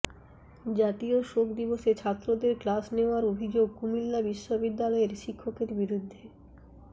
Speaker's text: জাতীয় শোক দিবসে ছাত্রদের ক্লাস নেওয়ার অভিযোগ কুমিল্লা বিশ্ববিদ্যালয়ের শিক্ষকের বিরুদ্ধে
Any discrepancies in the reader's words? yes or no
no